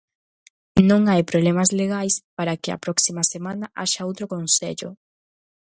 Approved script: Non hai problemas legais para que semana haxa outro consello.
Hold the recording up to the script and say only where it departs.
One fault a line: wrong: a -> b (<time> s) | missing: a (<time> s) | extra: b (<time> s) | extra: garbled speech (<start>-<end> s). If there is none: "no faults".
extra: a próxima (2.7 s)